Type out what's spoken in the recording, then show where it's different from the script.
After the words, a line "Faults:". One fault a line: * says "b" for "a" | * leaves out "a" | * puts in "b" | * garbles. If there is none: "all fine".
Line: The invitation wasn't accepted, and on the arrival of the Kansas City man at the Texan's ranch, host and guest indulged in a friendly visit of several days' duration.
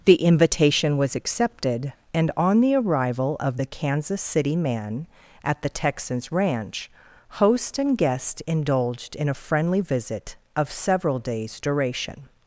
The invitation was accepted, and on the arrival of the Kansas City man at the Texan's ranch, host and guest indulged in a friendly visit of several days' duration.
Faults:
* says "was" for "wasn't"